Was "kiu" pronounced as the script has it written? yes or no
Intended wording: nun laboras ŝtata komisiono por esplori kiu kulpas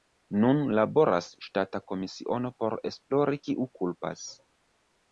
yes